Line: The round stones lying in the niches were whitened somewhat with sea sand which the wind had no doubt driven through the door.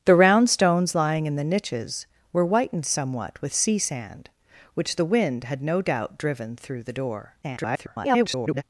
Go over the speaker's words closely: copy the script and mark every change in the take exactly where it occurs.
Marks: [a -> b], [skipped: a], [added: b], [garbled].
The round stones lying in the niches were whitened somewhat with sea sand which the wind had no doubt driven through the door. [garbled]